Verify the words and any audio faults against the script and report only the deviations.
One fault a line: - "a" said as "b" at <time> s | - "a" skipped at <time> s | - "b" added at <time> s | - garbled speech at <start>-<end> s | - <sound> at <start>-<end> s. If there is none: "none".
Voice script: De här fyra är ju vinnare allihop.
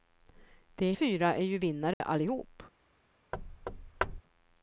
- "här" skipped at 0.9 s
- dropout at 1.9-2.0 s
- thud at 3.3-4.2 s